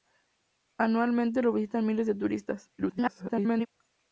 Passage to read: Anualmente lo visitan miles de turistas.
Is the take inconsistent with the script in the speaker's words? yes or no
yes